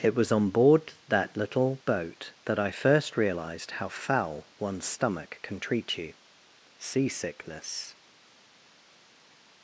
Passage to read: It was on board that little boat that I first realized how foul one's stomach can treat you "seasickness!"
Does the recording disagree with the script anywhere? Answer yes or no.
no